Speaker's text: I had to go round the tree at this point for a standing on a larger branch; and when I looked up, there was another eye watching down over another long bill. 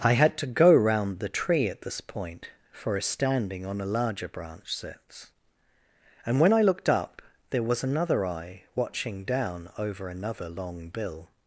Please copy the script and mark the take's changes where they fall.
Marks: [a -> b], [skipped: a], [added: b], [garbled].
I had to go round the tree at this point for a standing on a larger branch; [added: sits] and when I looked up, there was another eye watching down over another long bill.